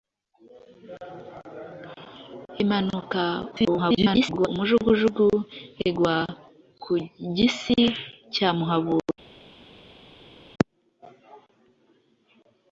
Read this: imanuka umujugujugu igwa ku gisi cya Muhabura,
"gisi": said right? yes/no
yes